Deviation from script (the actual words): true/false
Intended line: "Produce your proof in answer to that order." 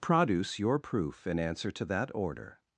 false